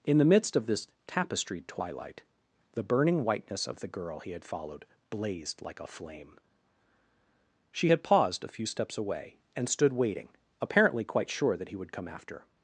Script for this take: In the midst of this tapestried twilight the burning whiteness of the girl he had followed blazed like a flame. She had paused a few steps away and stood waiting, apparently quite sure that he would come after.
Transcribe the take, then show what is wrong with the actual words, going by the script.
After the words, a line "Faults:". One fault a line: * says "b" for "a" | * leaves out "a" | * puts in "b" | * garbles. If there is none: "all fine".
In the midst of this tapestried twilight the burning whiteness of the girl he had followed blazed like a flame. She had paused a few steps away and stood waiting, apparently quite sure that he would come after.
Faults:
all fine